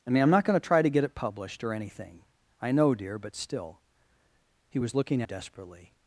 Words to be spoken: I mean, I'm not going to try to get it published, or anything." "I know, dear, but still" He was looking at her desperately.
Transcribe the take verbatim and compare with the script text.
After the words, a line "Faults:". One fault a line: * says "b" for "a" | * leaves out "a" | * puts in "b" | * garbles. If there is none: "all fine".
I mean, I'm not going to try to get it published, or anything." "I know, dear, but still" He was looking desperately.
Faults:
* leaves out "at her"